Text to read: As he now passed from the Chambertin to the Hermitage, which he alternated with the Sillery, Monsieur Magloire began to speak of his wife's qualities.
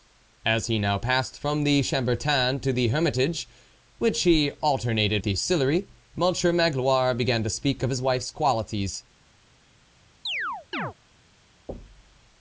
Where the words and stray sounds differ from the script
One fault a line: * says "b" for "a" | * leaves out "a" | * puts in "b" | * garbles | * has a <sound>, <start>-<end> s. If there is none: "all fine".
* leaves out "with"
* has a chirp, 10.3-10.9 s
* has a thud, 11.7-12.2 s